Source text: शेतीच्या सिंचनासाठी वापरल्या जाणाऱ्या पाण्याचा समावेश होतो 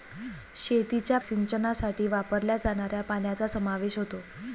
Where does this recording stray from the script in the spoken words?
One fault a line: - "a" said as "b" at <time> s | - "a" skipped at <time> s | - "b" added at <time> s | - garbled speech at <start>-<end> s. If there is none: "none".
none